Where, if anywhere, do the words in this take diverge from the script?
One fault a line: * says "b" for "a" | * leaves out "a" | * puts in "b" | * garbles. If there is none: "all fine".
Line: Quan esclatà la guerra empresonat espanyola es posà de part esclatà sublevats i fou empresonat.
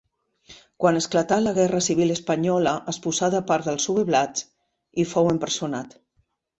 * says "civil" for "empresonat"
* says "dels" for "esclatà"